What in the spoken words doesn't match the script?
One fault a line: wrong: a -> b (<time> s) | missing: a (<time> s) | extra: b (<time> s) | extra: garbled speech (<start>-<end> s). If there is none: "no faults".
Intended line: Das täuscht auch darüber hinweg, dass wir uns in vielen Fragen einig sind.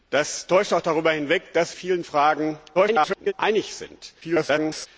missing: wir uns in (1.7 s)
extra: garbled speech (2.7-3.3 s)
extra: garbled speech (4.2-4.9 s)